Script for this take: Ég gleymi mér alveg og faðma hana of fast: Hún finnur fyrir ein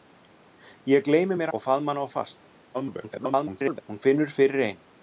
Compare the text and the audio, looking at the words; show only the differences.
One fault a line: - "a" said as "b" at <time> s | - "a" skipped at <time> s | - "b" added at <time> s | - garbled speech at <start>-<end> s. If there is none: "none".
- "alveg" skipped at 1.5 s
- garbled speech at 2.7-3.8 s